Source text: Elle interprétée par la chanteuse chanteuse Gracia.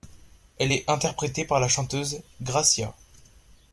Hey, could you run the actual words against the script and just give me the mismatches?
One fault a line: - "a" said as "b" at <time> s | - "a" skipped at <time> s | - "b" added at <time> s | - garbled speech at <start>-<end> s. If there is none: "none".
- "est" added at 0.7 s
- "chanteuse" skipped at 2.2 s